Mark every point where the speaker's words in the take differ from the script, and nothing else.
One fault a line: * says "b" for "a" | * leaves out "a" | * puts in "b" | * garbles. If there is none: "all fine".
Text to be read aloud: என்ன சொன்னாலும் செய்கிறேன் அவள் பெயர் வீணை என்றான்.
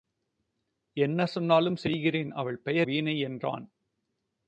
all fine